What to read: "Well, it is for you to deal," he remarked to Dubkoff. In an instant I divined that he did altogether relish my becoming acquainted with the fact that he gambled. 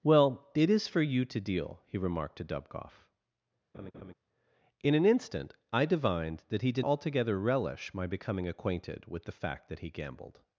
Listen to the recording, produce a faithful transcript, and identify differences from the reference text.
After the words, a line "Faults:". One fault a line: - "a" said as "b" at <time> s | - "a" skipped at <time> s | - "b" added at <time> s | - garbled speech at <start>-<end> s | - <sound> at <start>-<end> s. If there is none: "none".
"Well, it is for you to deal," he remarked to Dubkoff. In an instant I divined that he did altogether relish my becoming acquainted with the fact that he gambled.
Faults:
- laugh at 3.7-4.1 s